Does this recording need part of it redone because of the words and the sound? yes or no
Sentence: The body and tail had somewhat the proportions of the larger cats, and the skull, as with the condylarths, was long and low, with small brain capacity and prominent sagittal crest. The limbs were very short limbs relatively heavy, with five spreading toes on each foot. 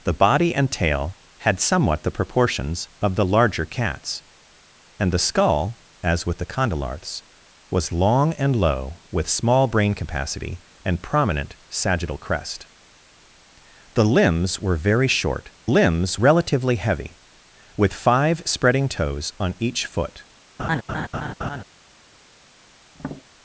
yes